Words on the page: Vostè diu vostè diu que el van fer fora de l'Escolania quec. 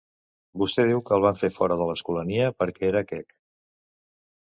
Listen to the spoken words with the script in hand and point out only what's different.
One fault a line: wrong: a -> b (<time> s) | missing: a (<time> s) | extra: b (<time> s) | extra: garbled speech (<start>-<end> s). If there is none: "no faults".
missing: vostè diu (1.0 s)
extra: perquè era (2.6 s)